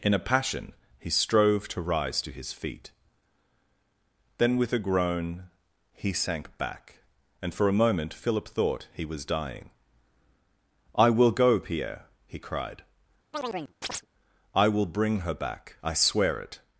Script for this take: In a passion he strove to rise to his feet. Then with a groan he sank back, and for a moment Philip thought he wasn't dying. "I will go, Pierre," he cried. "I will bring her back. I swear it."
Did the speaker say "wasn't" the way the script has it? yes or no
no